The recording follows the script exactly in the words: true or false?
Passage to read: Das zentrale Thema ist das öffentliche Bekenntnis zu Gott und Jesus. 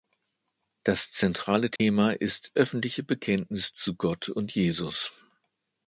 false